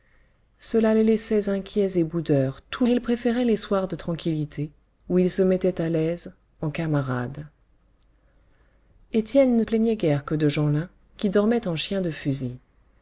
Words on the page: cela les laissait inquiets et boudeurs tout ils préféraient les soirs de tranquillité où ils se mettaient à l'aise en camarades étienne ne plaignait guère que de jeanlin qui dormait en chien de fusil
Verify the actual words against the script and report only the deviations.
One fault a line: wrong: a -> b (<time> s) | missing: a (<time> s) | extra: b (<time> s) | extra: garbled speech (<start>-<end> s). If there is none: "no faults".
no faults